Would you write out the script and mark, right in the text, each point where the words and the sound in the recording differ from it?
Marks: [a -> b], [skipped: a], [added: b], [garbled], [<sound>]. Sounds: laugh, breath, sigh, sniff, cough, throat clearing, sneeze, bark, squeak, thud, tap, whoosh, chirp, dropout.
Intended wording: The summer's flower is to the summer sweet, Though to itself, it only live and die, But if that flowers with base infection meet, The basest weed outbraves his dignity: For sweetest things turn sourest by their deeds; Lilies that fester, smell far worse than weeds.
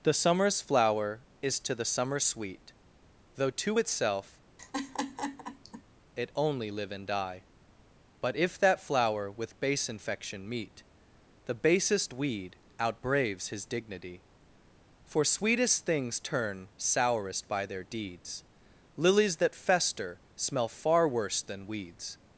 The summer's flower is to the summer sweet, Though to itself, [laugh] it only live and die, But if that [flowers -> flower] with base infection meet, The basest weed outbraves his dignity: For sweetest things turn sourest by their deeds; Lilies that fester, smell far worse than weeds.